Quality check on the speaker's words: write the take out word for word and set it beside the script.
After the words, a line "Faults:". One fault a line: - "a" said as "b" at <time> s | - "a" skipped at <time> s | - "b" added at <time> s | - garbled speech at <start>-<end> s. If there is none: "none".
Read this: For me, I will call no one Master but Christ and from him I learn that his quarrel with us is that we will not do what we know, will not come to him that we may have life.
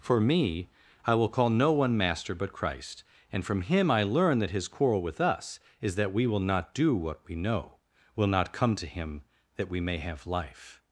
For me, I will call no one Master but Christ and from him I learn that his quarrel with us is that we will not do what we know, will not come to him that we may have life.
Faults:
none